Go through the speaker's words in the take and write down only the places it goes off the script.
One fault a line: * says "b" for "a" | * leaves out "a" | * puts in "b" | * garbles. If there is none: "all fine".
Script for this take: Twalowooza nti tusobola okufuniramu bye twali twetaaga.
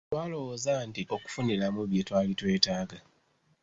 * leaves out "tusobola"